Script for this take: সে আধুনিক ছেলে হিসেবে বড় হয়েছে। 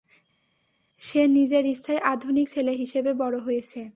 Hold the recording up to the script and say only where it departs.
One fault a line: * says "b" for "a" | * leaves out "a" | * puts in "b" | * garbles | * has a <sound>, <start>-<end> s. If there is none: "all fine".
* puts in "নিজের ইচ্ছায়"